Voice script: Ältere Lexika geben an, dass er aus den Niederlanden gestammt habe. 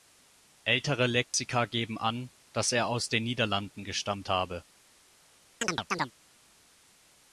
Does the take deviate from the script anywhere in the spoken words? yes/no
no